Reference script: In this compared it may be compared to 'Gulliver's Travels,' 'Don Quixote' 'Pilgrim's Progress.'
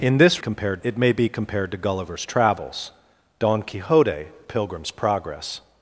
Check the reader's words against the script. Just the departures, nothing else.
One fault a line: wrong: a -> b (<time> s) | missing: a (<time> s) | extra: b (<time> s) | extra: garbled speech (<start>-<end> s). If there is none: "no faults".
no faults